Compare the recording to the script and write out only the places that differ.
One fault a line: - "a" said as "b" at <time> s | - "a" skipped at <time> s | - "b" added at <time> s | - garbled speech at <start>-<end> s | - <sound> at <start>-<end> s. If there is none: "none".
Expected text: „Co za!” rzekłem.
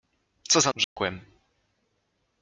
- dropout at 0.8-1.0 s